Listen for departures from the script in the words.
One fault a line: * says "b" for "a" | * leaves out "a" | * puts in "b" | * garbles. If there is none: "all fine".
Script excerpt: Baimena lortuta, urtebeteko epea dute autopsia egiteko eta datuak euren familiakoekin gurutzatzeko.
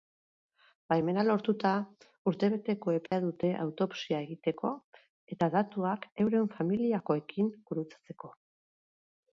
all fine